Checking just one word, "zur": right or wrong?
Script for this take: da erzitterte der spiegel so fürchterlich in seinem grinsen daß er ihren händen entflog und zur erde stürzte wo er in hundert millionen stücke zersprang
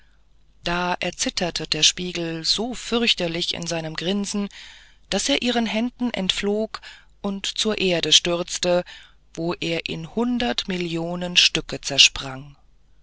right